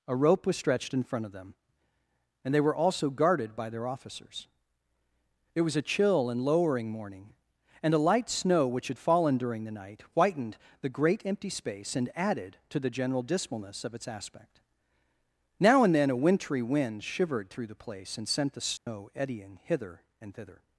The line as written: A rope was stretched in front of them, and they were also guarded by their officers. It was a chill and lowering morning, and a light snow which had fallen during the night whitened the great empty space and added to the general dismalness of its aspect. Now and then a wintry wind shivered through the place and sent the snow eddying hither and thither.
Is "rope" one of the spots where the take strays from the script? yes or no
no